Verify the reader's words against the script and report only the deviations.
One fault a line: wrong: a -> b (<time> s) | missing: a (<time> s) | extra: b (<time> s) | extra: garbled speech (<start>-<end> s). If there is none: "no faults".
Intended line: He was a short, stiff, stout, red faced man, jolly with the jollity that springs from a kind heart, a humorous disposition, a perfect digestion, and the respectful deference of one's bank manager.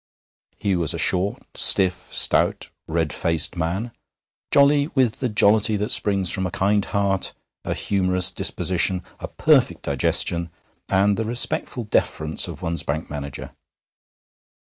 no faults